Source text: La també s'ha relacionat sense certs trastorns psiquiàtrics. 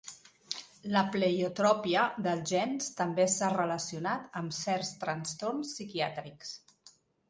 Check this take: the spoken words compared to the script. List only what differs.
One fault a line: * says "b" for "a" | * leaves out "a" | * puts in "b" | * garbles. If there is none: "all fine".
* puts in "pleiotropia dels gens"
* says "amb" for "sense"